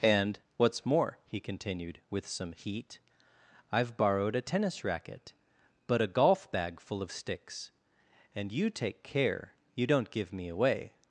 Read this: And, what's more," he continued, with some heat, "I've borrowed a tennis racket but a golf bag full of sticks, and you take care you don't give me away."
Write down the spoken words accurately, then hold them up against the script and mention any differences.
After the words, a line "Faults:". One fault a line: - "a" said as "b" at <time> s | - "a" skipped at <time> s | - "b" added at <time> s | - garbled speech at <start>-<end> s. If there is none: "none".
And, what's more," he continued, with some heat, "I've borrowed a tennis racket but a golf bag full of sticks, and you take care you don't give me away."
Faults:
none